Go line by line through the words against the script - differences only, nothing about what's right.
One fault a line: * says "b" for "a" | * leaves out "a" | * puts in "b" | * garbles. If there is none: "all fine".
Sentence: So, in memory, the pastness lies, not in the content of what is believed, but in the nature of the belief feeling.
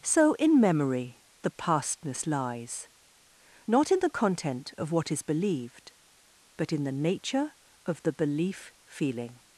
all fine